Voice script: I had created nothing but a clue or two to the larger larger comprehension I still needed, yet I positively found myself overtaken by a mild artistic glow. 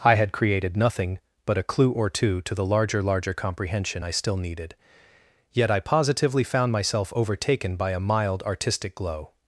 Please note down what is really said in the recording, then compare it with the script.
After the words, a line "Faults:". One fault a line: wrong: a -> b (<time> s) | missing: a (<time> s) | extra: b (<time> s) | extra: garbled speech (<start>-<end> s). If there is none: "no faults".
I had created nothing but a clue or two to the larger larger comprehension I still needed, yet I positively found myself overtaken by a mild artistic glow.
Faults:
no faults